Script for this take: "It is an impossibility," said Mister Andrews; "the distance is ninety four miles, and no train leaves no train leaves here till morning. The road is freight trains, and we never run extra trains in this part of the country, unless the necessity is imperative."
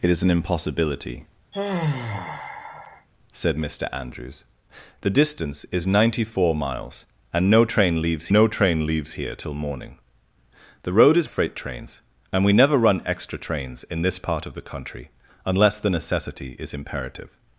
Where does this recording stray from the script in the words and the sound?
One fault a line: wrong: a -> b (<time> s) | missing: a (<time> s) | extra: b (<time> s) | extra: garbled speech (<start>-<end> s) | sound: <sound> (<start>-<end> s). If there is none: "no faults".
sound: sigh (1.5-3.1 s)